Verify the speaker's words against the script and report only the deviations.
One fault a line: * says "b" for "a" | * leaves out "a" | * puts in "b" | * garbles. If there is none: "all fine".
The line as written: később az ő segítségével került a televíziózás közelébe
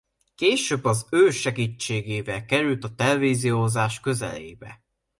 all fine